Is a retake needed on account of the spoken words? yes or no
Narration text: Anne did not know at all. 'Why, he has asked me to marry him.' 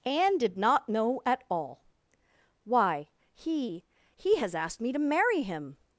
yes